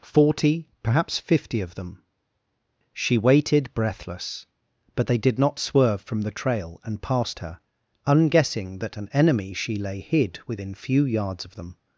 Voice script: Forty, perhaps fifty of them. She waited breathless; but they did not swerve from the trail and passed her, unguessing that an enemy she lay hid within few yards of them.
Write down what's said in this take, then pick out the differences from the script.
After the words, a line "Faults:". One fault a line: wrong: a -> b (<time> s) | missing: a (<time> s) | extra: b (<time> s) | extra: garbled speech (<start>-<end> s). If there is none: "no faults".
Forty, perhaps fifty of them. She waited breathless; but they did not swerve from the trail and passed her, unguessing that an enemy she lay hid within few yards of them.
Faults:
no faults